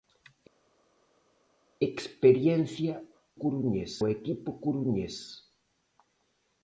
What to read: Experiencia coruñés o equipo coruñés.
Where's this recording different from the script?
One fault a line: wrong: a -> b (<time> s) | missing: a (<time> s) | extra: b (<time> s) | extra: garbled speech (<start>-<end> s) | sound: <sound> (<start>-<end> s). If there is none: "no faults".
no faults